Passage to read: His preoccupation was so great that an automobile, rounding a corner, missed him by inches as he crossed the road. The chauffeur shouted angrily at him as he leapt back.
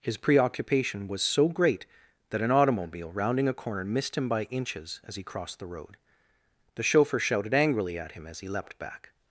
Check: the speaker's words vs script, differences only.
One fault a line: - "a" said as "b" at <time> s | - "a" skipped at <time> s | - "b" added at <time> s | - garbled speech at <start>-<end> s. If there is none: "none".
none